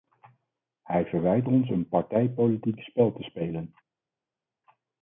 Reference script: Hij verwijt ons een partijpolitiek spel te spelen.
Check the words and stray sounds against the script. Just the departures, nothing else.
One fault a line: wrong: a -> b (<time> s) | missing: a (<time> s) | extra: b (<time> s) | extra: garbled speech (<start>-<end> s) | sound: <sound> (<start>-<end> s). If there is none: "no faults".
no faults